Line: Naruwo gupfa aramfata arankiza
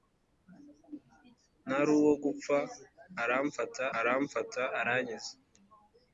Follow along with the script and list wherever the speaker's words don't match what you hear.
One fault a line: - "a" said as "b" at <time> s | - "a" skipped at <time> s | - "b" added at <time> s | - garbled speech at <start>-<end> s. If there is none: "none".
- "aramfata" added at 4.0 s